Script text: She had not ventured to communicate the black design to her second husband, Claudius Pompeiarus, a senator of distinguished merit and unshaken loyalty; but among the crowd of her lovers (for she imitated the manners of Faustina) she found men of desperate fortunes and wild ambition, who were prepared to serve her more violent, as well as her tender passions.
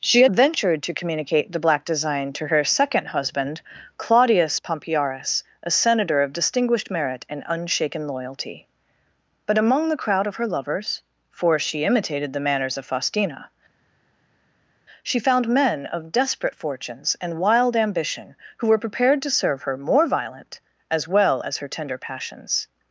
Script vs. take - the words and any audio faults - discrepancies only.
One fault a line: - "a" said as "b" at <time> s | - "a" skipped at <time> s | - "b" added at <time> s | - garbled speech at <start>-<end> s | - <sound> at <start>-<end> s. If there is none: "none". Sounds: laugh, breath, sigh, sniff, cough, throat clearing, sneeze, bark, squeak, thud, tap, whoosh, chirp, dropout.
- "not" skipped at 0.3 s